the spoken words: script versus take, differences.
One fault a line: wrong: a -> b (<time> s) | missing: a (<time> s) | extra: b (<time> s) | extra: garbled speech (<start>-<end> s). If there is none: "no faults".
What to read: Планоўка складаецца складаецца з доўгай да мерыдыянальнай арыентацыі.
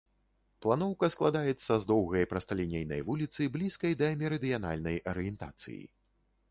missing: складаецца (1.7 s)
extra: прасталінейнай вуліцы блізкай (2.3 s)